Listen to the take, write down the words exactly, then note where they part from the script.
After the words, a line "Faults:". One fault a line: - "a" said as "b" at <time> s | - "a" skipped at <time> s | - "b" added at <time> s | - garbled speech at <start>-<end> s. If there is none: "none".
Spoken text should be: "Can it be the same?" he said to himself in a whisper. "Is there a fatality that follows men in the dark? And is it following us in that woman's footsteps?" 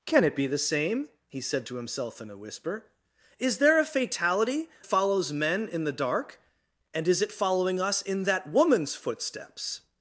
"Can it be the same?" he said to himself in a whisper. "Is there a fatality follows men in the dark? And is it following us in that woman's footsteps?"
Faults:
- "that" skipped at 4.7 s